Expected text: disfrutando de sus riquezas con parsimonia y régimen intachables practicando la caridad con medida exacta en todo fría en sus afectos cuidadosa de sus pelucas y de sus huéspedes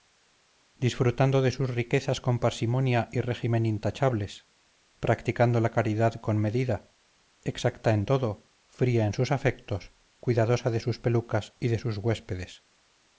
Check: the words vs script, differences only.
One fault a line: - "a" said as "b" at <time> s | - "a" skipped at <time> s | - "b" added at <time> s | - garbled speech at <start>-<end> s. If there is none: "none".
none